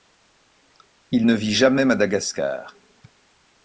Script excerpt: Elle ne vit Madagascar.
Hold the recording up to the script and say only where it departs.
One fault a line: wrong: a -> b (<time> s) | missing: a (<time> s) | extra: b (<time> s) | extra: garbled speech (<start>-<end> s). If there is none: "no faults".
wrong: Elle -> Il (1.1 s)
extra: jamais (1.5 s)